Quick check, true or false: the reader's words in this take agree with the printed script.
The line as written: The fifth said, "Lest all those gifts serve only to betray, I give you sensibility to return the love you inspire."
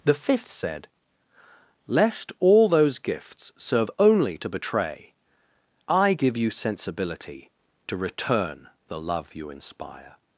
true